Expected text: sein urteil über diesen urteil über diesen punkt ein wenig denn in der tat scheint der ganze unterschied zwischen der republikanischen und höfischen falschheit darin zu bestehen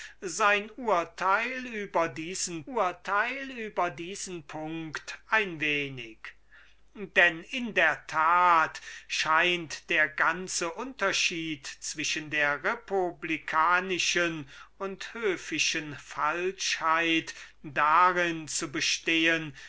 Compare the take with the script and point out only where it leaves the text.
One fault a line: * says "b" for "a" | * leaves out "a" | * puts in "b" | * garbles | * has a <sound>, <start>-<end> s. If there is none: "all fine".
all fine